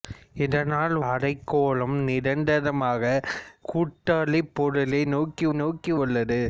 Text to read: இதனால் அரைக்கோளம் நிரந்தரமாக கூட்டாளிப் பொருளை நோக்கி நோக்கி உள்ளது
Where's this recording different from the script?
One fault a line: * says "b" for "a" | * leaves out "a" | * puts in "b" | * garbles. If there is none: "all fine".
all fine